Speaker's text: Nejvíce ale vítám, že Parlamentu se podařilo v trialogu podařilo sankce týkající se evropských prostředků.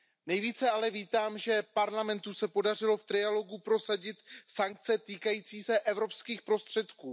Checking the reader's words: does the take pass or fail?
fail